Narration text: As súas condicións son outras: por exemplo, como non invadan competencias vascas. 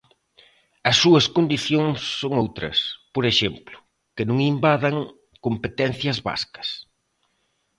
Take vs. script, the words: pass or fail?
fail